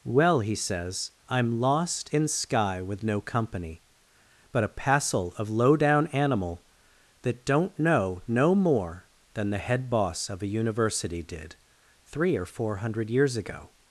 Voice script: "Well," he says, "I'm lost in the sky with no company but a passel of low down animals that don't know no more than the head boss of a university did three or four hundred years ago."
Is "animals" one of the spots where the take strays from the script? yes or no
yes